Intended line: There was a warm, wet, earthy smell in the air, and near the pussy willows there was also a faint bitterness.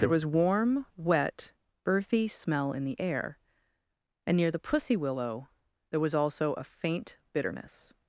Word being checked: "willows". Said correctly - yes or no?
no